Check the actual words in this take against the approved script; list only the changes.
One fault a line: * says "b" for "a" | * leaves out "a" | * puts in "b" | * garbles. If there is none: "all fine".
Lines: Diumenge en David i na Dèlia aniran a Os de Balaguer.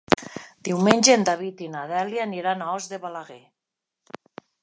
all fine